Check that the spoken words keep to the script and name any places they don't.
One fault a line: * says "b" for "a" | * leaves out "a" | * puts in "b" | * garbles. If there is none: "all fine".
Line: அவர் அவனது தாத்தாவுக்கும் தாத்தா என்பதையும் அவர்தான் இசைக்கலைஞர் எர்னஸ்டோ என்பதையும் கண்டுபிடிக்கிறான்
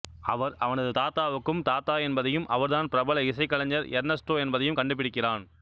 * puts in "பிரபல"